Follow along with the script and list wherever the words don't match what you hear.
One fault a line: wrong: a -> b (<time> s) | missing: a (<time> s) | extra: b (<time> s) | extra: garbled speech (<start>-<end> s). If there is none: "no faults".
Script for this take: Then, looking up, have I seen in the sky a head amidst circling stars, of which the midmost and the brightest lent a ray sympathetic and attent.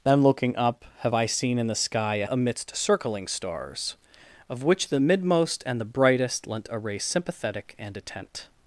missing: head (2.3 s)